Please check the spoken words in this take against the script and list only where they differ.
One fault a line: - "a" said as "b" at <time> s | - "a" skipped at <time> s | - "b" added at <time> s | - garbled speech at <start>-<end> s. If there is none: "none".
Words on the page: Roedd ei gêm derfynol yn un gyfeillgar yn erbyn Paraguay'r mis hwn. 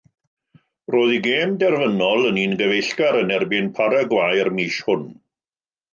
none